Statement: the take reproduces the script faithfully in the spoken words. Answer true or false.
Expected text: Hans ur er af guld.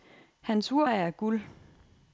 true